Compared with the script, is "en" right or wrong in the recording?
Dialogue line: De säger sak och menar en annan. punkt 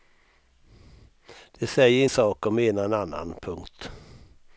right